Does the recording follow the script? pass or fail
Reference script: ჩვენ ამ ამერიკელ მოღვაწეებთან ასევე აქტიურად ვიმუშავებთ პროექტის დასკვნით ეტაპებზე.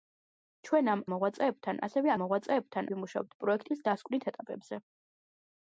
fail